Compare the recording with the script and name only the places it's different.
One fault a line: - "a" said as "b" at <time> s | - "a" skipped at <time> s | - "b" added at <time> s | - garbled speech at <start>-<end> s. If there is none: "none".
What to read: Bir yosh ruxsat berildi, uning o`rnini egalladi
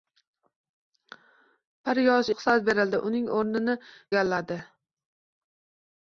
none